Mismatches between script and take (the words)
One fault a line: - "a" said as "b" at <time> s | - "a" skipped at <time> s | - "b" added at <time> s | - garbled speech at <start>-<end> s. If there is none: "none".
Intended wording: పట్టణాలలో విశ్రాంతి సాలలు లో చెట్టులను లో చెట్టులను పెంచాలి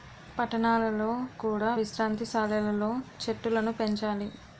- "కూడా" added at 1.4 s
- "లో చెట్టులను" skipped at 3.7 s